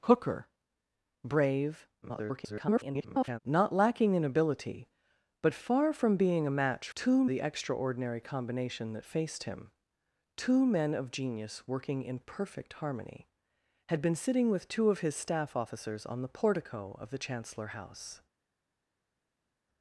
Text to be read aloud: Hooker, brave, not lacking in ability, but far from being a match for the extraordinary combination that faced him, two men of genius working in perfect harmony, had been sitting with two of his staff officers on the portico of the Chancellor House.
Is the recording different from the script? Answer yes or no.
yes